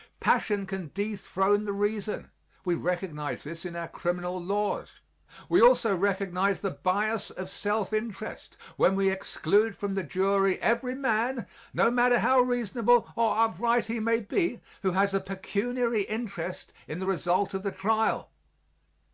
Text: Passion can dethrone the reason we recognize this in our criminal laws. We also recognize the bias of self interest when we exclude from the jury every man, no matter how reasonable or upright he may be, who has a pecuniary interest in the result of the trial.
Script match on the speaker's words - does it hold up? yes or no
yes